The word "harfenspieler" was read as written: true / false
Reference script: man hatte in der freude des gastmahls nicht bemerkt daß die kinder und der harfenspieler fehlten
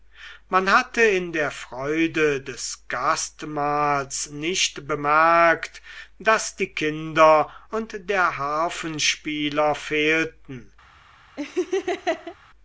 true